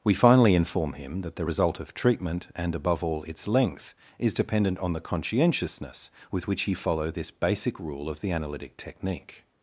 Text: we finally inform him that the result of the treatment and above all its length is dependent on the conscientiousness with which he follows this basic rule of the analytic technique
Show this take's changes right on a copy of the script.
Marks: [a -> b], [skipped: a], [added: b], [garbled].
we finally inform him that the result of [skipped: the] treatment and above all its length is dependent on the conscientiousness with which he [follows -> follow] this basic rule of the analytic technique